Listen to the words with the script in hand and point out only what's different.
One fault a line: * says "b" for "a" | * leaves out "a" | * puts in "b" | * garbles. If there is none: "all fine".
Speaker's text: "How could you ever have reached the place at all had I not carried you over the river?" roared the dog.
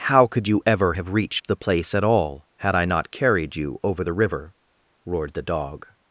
all fine